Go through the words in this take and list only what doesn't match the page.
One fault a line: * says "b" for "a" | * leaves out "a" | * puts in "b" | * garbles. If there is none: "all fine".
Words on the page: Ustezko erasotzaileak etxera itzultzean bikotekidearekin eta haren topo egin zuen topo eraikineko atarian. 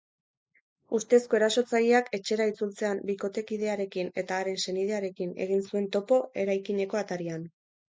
* says "senidearekin" for "topo"